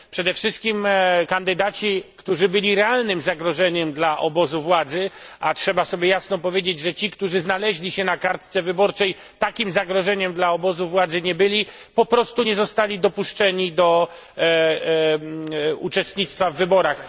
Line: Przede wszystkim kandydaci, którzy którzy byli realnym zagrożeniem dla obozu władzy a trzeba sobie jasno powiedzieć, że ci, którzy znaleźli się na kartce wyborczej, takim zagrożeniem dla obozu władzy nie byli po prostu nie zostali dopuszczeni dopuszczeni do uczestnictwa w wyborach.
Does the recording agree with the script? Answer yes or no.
no